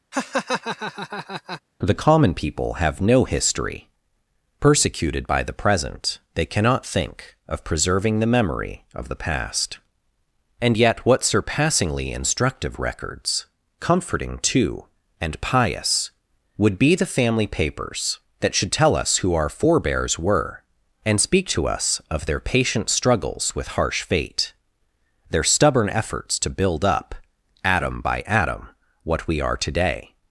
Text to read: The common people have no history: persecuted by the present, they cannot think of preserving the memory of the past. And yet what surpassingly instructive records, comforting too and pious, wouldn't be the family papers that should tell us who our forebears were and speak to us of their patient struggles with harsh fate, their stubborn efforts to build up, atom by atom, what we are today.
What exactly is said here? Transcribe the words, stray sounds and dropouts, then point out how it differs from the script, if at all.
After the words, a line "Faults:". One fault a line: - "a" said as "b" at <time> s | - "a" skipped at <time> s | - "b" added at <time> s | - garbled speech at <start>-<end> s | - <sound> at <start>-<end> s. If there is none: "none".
The common people have no history: persecuted by the present, they cannot think of preserving the memory of the past. And yet what surpassingly instructive records, comforting too and pious, would be the family papers that should tell us who our forebears were and speak to us of their patient struggles with harsh fate, their stubborn efforts to build up, atom by atom, what we are today.
Faults:
- laugh at 0.1-1.6 s
- "wouldn't" said as "would" at 16.6 s